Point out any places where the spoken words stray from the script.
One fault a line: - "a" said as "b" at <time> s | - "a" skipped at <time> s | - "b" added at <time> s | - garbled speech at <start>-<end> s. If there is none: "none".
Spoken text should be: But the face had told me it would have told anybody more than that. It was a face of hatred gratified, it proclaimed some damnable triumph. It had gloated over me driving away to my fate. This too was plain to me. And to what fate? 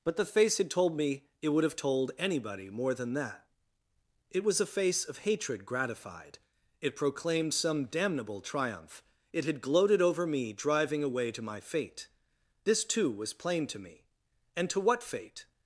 none